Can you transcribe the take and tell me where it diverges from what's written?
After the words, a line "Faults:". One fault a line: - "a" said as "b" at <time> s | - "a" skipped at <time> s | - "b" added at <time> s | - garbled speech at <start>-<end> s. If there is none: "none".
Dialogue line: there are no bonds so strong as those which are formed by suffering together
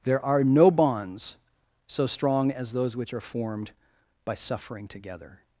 there are no bonds so strong as those which are formed by suffering together
Faults:
none